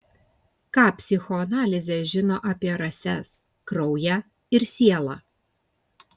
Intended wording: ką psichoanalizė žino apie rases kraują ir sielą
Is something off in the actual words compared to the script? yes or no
no